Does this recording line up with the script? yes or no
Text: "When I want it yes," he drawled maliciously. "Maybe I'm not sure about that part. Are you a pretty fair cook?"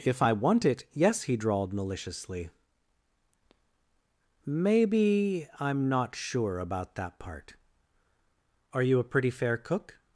no